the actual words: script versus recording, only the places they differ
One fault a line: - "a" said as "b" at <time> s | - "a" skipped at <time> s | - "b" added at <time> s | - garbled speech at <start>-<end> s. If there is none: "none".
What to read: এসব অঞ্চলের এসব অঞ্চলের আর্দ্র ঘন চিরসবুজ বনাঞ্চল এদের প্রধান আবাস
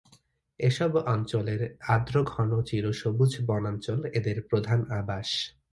- "এসব অঞ্চলের" skipped at 1.6 s